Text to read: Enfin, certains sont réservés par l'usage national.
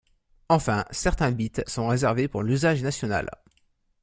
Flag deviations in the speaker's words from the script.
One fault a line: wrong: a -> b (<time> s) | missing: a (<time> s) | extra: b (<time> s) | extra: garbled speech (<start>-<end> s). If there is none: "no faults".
extra: bits (1.3 s)
wrong: par -> pour (2.3 s)